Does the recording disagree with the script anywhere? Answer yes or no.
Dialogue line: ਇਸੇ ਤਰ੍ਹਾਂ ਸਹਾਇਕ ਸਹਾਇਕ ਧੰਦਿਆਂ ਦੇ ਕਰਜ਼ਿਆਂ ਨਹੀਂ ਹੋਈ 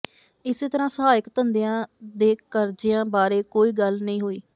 yes